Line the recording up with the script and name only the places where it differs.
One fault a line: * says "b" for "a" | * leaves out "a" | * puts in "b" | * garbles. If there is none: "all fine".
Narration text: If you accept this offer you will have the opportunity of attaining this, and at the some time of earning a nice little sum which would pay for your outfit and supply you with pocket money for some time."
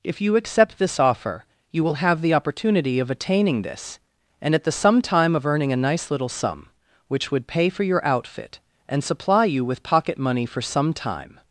all fine